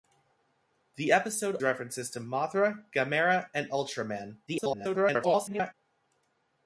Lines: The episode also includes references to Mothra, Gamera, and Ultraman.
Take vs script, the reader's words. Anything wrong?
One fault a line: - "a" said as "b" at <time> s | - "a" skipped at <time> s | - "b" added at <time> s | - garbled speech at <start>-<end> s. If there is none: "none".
- "also includes" skipped at 1.6 s
- garbled speech at 4.5-5.7 s